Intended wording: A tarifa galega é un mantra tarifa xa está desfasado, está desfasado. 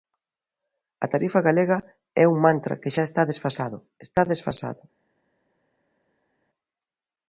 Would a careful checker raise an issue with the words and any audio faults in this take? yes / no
yes